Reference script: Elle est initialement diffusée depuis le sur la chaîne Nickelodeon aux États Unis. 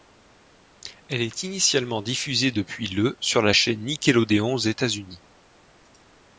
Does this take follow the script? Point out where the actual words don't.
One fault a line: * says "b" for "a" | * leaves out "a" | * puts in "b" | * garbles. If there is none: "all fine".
all fine